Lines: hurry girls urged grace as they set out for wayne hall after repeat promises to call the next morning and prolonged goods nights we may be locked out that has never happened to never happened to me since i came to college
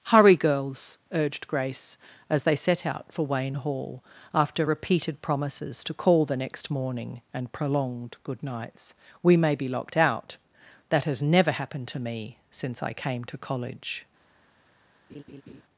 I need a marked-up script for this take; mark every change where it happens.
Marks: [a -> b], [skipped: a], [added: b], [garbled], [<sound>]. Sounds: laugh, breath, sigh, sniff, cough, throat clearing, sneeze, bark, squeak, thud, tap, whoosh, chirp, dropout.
hurry girls urged grace as they set out for wayne hall after [repeat -> repeated] promises to call the next morning and prolonged [goods -> good] nights we may be locked out that has never happened to [skipped: never happened to] me since i came to college [laugh]